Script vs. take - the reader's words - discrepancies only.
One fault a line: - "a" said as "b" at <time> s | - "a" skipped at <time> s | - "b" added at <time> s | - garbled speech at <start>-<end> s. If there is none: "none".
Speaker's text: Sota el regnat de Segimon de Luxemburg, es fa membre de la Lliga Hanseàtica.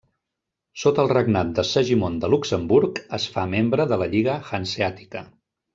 none